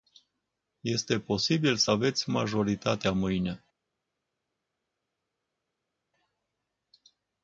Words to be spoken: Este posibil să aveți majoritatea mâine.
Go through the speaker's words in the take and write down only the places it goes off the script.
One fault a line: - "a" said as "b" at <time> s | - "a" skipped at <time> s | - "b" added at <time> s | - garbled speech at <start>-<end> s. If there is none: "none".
none